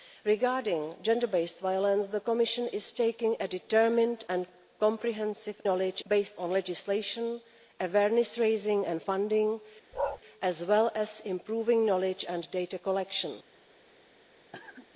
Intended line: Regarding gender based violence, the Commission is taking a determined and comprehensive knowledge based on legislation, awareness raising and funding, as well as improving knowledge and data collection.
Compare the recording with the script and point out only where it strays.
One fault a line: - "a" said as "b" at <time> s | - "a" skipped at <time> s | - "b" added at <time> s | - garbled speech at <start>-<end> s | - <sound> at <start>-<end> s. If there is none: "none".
- bark at 9.9-10.2 s
- cough at 14.5-14.9 s